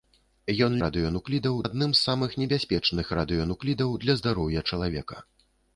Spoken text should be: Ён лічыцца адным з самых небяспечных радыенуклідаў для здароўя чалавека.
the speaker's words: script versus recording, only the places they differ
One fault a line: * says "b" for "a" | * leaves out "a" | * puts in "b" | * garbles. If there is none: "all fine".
* says "радыенуклідаў" for "лічыцца"